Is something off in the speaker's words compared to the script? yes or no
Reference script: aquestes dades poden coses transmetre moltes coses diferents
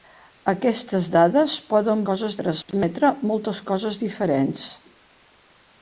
no